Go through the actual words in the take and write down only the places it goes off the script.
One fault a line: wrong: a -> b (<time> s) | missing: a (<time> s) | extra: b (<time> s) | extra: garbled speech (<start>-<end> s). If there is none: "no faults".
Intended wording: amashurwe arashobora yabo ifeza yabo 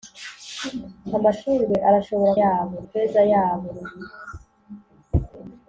no faults